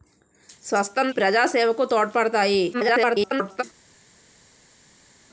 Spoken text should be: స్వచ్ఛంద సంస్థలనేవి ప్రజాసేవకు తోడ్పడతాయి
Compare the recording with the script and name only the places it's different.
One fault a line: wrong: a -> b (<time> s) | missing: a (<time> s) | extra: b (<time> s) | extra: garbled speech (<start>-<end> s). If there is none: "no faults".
missing: సంస్థలనేవి (1.1 s)
extra: garbled speech (2.7-3.6 s)